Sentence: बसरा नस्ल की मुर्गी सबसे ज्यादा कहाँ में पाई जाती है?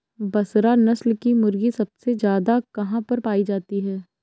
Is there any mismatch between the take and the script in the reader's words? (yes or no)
yes